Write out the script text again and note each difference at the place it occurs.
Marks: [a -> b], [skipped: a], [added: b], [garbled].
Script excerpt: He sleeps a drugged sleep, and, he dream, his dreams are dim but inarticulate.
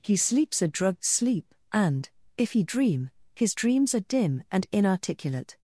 He sleeps a drugged sleep, and, [added: if] he dream, his dreams are dim [but -> and] inarticulate.